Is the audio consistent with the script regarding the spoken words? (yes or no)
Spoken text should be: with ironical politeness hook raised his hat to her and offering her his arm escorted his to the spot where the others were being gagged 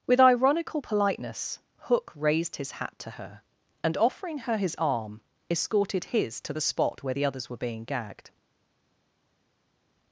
yes